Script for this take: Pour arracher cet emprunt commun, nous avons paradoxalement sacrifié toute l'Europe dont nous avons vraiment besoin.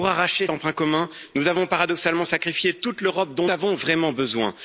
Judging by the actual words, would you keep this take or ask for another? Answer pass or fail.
fail